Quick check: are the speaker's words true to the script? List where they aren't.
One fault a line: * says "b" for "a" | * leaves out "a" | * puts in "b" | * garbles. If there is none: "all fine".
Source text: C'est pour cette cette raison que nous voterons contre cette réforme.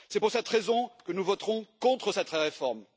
* leaves out "cette"